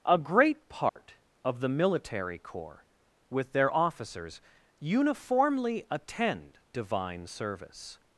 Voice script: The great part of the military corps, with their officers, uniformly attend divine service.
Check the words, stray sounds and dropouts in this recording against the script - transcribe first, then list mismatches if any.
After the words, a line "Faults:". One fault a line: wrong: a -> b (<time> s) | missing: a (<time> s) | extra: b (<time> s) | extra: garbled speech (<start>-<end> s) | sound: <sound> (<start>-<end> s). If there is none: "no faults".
A great part of the military corps, with their officers, uniformly attend divine service.
Faults:
wrong: The -> A (0.1 s)
sound: dropout (0.9-1.0 s)